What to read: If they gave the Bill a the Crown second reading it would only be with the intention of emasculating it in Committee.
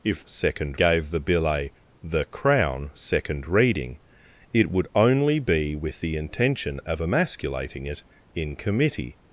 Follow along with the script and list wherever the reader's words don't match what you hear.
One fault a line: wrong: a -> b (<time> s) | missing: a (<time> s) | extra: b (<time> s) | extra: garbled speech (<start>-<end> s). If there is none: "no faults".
wrong: they -> second (0.2 s)